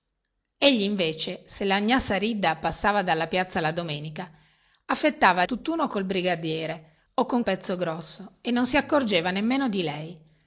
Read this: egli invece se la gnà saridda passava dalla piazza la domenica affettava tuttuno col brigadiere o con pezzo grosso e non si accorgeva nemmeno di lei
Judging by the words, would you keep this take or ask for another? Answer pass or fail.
pass